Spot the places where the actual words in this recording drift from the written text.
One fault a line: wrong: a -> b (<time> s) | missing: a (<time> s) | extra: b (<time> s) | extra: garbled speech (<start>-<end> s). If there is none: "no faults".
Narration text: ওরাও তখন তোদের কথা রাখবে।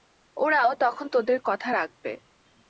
no faults